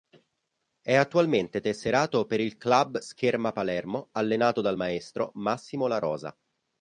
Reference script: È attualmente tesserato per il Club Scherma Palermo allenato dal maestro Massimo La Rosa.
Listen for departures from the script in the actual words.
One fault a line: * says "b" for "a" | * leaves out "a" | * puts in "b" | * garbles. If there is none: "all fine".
all fine